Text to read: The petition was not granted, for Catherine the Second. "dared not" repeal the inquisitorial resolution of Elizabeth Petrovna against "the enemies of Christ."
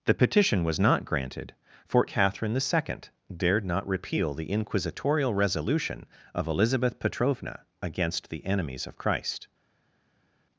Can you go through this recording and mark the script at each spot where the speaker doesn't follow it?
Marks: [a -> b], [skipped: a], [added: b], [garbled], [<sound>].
The petition was not granted, for Catherine the Second. "dared not" repeal the inquisitorial resolution of Elizabeth Petrovna against "the enemies of Christ."